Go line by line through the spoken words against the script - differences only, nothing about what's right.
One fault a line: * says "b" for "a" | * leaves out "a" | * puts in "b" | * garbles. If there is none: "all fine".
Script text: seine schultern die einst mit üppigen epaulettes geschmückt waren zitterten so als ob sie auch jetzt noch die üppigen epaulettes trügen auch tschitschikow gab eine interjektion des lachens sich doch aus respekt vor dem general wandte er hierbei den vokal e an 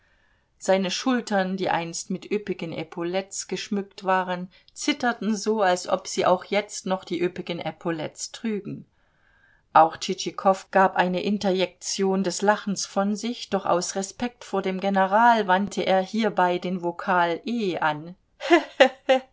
* puts in "von"